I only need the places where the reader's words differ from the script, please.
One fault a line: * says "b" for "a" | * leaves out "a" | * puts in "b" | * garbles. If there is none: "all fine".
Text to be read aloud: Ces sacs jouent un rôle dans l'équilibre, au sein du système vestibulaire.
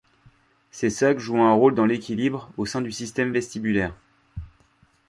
all fine